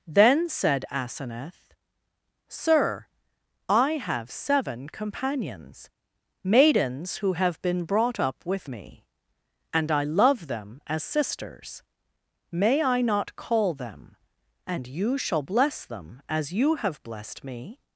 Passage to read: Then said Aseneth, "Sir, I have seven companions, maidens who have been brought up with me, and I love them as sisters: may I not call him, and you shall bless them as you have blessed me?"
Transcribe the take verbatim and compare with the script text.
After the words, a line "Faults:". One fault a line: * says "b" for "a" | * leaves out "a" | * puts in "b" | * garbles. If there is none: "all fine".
Then said Aseneth, "Sir, I have seven companions, maidens who have been brought up with me, and I love them as sisters: may I not call them, and you shall bless them as you have blessed me?"
Faults:
* says "them" for "him"